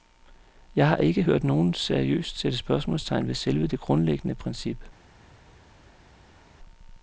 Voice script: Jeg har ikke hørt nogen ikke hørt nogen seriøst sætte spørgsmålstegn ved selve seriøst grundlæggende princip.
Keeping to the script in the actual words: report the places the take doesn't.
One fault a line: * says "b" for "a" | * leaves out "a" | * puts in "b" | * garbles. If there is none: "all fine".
* leaves out "ikke hørt nogen"
* says "det" for "seriøst"